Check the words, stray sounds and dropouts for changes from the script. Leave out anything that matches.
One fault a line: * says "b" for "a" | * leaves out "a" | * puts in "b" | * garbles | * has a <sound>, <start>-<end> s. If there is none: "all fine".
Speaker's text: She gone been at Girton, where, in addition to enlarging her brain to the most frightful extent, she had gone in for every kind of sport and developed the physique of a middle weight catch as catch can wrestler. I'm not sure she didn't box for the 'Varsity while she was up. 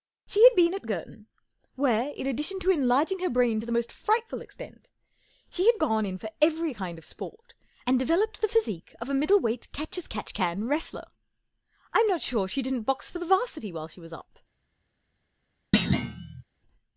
* says "had" for "gone"
* has a thud, 15.7-16.4 s